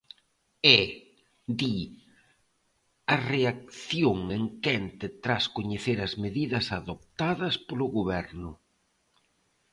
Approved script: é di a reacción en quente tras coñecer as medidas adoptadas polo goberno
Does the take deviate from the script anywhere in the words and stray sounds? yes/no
no